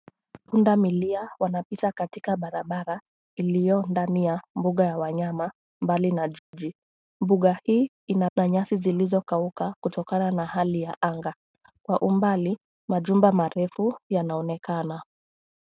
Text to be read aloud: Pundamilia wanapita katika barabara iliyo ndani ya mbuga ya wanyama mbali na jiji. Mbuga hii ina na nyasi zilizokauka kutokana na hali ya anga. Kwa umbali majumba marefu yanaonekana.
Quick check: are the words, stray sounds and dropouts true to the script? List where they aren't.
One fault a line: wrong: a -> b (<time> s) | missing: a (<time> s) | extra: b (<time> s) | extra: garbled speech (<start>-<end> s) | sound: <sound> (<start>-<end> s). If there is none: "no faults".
sound: dropout (6.4-6.5 s)